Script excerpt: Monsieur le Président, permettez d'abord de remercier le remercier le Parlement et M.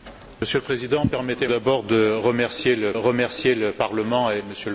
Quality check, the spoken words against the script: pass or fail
pass